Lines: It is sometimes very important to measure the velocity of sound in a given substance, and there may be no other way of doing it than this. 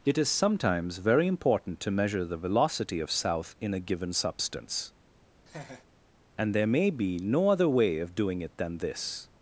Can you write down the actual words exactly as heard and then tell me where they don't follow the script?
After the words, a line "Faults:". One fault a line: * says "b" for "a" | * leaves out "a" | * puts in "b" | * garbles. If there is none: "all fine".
It is sometimes very important to measure the velocity of south in a given substance, and there may be no other way of doing it than this.
Faults:
* says "south" for "sound"